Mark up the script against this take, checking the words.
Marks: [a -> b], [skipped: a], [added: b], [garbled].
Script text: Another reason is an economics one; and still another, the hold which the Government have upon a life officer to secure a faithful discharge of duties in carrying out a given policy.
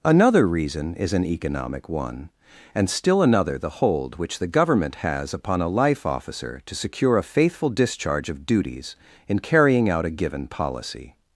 Another reason is an [economics -> economic] one; and still another, the hold which the Government [have -> has] upon a life officer to secure a faithful discharge of duties in carrying out a given policy.